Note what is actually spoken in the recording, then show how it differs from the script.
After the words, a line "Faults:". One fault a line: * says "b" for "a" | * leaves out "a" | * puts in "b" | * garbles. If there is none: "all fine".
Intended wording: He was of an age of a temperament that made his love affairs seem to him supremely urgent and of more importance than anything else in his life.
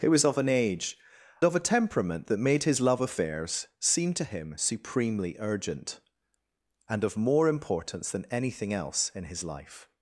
He was of an age of a temperament that made his love affairs seem to him supremely urgent and of more importance than anything else in his life.
Faults:
all fine